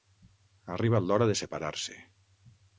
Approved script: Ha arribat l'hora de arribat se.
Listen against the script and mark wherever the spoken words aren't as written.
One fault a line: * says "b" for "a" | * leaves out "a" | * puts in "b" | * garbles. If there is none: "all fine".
* says "separar" for "arribat"